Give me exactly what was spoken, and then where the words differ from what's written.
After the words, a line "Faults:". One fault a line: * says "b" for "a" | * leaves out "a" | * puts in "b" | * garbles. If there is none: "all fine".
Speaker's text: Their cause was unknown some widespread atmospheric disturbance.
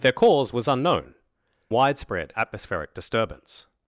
Their cause was unknown widespread atmospheric disturbance.
Faults:
* leaves out "some"